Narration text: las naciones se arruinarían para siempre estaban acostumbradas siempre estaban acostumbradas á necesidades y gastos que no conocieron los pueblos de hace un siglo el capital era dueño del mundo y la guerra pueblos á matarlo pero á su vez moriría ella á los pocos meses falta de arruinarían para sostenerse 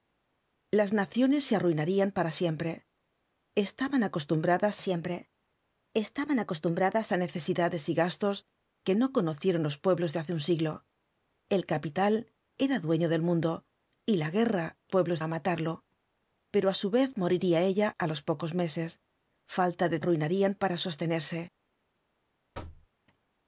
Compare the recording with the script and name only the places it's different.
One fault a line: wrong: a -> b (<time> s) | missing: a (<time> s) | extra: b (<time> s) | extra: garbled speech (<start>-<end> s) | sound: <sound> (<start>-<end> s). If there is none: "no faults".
sound: thud (22.5-22.9 s)